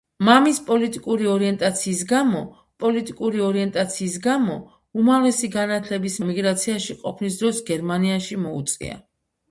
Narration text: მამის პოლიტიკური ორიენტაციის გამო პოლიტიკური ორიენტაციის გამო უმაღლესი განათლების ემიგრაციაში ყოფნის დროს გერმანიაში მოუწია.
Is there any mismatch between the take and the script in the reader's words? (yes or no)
no